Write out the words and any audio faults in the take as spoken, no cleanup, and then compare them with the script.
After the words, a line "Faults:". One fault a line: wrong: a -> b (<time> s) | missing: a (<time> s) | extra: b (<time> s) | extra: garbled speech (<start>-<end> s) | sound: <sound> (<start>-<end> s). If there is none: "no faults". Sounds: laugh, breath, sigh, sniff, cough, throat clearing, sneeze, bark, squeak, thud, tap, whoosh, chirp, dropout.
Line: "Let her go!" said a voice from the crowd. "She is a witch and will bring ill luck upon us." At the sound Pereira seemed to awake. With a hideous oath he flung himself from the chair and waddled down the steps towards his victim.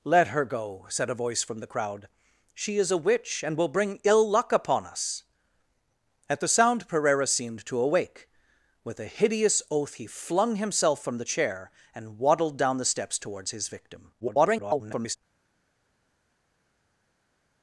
"Let her go!" said a voice from the crowd. "She is a witch and will bring ill luck upon us." At the sound Pereira seemed to awake. With a hideous oath he flung himself from the chair and waddled down the steps towards his victim. [garbled]
Faults:
extra: garbled speech (14.2-15.2 s)